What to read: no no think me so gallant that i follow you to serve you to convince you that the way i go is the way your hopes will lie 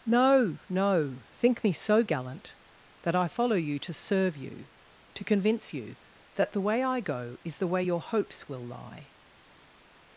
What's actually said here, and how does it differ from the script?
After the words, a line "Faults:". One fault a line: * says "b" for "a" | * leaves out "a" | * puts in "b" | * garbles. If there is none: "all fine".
no no think me so gallant that i follow you to serve you to convince you that the way i go is the way your hopes will lie
Faults:
all fine